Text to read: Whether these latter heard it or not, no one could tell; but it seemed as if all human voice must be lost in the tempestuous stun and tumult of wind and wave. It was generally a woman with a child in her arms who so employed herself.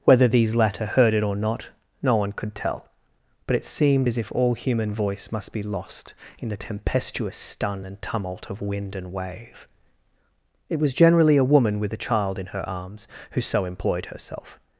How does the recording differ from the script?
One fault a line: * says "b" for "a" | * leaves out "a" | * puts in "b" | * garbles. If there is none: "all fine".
all fine